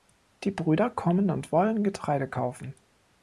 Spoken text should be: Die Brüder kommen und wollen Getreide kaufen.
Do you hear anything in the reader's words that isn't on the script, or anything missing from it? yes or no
no